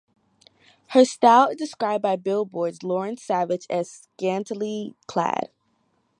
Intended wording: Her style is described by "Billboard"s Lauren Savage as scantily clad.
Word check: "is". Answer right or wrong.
right